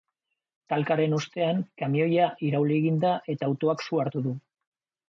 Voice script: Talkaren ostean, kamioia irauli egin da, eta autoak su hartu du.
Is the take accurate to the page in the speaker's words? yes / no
yes